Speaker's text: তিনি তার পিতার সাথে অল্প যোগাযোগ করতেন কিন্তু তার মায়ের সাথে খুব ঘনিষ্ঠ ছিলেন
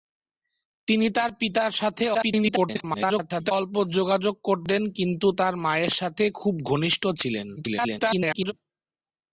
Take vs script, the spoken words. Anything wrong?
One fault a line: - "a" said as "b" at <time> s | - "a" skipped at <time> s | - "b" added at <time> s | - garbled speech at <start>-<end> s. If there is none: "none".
- garbled speech at 2.1-3.5 s
- garbled speech at 7.6-8.5 s